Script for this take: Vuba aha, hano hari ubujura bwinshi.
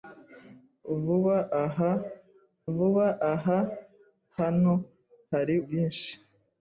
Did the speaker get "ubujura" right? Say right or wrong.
wrong